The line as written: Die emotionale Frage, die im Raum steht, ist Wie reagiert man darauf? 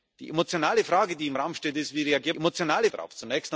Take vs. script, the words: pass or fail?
fail